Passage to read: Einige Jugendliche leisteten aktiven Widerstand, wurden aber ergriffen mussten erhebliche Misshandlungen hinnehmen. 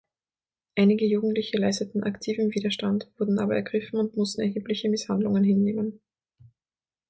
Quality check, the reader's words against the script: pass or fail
fail